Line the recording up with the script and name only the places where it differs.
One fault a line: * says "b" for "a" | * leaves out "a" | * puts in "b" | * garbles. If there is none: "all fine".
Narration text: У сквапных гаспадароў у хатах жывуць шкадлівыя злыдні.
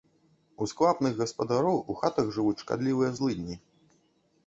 all fine